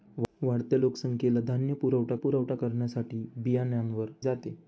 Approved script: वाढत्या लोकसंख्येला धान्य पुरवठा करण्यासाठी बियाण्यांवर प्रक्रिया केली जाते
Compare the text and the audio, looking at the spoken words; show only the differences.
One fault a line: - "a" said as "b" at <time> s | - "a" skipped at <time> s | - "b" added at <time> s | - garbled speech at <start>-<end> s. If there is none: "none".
- "पुरवठा" added at 2.2 s
- "प्रक्रिया केली" skipped at 4.1 s